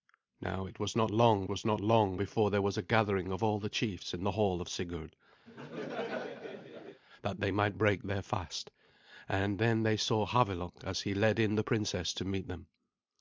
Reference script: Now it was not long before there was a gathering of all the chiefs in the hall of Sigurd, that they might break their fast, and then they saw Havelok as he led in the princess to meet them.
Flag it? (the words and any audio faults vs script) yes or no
yes